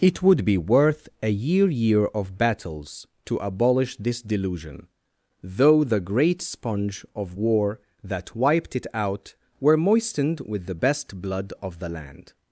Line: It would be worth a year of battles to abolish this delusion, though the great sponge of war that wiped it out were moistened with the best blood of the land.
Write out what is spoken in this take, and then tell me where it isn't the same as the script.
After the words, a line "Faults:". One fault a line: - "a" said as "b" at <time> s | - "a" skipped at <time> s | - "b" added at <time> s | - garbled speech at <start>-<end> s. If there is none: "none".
It would be worth a year year of battles to abolish this delusion, though the great sponge of war that wiped it out were moistened with the best blood of the land.
Faults:
- "year" added at 1.7 s